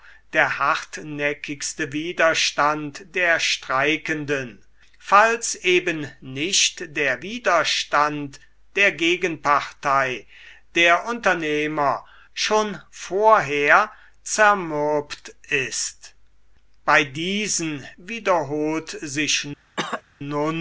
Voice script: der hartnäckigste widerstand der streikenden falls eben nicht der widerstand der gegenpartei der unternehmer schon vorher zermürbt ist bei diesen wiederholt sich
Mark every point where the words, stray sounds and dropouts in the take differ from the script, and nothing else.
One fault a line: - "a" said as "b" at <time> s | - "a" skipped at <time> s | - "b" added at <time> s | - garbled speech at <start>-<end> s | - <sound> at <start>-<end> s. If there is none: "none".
- cough at 19.8-20.0 s